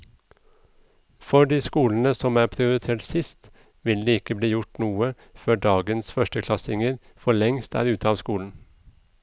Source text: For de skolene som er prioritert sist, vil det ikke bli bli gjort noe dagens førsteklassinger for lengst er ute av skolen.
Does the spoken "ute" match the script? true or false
true